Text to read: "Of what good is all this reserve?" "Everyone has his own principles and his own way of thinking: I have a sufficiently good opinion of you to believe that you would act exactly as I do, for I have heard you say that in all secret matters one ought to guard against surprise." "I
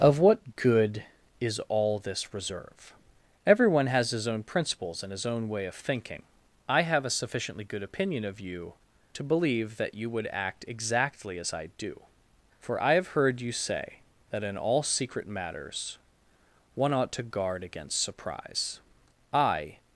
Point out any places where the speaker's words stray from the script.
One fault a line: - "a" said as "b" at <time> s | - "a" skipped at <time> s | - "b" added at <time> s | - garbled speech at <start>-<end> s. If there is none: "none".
none